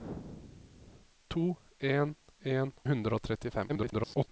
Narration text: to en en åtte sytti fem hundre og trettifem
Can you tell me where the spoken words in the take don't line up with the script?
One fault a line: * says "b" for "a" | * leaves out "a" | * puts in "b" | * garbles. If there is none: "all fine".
* leaves out "åtte sytti fem"
* garbles